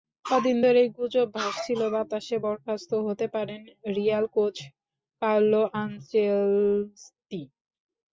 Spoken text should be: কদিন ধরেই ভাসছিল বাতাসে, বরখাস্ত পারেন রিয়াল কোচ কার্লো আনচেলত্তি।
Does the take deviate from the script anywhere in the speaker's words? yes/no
yes